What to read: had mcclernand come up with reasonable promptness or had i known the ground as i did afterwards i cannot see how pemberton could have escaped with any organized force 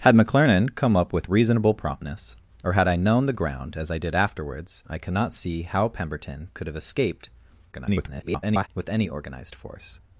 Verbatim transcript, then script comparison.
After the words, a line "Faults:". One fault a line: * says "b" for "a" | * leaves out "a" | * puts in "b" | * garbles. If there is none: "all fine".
had mcclernand come up with reasonable promptness or had i known the ground as i did afterwards i cannot see how pemberton could have escaped [garbled] with any organized force
Faults:
* garbles